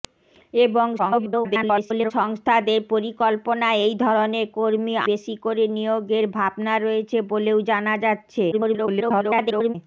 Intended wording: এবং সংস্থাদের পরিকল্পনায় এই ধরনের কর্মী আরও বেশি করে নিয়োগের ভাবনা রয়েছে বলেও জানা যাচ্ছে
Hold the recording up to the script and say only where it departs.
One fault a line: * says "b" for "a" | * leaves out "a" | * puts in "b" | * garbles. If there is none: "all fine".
* garbles
* leaves out "আরও"
* garbles